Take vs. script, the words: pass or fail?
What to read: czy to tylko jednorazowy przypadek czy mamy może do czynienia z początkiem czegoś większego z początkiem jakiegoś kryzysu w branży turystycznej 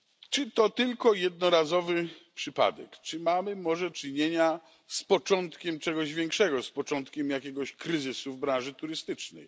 fail